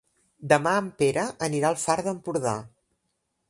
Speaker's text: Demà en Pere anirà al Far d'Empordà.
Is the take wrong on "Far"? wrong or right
right